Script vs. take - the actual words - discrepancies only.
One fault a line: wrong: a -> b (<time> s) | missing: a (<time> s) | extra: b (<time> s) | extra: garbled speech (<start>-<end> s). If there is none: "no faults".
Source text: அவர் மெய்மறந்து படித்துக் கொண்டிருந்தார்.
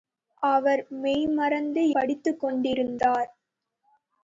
no faults